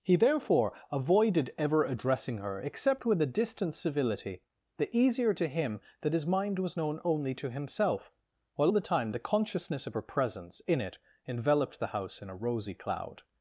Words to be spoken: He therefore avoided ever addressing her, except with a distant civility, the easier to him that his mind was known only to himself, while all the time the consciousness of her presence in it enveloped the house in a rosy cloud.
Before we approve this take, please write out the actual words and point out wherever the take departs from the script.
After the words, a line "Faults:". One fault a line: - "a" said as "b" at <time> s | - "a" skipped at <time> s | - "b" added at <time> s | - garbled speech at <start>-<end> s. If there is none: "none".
He therefore avoided ever addressing her, except with a distant civility, the easier to him that his mind was known only to himself, while the time the consciousness of her presence in it enveloped the house in a rosy cloud.
Faults:
- "all" skipped at 8.7 s